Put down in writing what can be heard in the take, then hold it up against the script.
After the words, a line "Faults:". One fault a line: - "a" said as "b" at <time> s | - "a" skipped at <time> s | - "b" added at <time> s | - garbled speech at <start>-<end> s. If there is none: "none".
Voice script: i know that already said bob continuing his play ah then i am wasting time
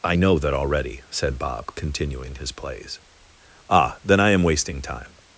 i know that already said bob continuing his plays ah then i am wasting time
Faults:
- "play" said as "plays" at 2.5 s